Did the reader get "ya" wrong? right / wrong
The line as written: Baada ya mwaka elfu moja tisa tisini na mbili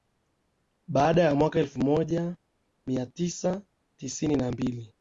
right